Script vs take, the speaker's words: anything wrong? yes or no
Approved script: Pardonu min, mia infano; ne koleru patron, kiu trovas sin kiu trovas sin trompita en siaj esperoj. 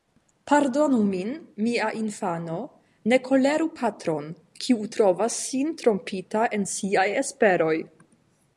yes